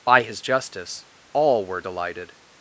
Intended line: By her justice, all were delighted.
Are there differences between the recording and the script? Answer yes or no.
yes